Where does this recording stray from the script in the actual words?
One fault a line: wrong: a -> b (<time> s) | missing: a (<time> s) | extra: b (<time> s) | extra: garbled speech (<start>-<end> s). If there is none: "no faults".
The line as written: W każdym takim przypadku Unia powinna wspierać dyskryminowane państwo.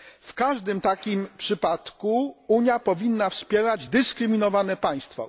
no faults